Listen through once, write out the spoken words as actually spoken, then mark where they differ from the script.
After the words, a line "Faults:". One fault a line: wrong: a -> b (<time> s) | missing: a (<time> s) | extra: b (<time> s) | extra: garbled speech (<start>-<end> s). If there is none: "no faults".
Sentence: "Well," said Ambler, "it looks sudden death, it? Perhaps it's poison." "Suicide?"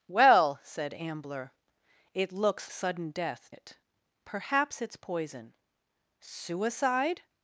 "Well," said Ambler, "it looks sudden death, it? Perhaps it's poison." "Suicide?"
Faults:
no faults